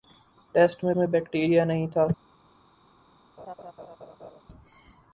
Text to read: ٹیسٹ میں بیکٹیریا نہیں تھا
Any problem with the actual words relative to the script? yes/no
yes